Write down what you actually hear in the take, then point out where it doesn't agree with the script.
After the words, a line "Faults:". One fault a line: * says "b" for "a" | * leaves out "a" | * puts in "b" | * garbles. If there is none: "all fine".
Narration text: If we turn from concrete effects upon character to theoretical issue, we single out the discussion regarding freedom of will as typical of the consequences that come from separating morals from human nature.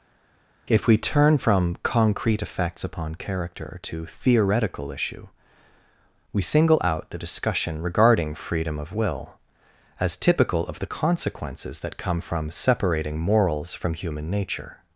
If we turn from concrete effects upon character to theoretical issue, we single out the discussion regarding freedom of will as typical of the consequences that come from separating morals from human nature.
Faults:
all fine